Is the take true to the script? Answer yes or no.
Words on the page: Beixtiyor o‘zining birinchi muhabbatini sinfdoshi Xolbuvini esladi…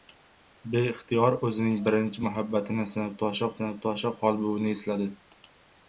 no